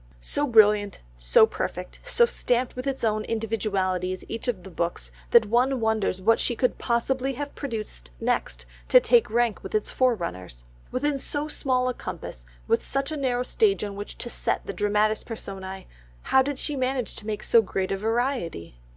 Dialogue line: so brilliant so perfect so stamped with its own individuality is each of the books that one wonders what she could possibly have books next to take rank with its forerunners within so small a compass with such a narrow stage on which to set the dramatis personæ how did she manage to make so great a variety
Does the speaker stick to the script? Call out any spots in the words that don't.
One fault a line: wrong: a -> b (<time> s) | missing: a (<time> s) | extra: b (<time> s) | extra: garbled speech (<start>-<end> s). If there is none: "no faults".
wrong: books -> produced (7.5 s)